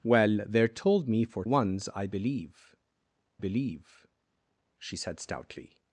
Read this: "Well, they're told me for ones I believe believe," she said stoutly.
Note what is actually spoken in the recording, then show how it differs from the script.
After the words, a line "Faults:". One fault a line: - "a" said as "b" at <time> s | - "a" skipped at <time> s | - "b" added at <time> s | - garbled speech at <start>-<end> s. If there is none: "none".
"Well, they're told me for ones I believe believe," she said stoutly.
Faults:
none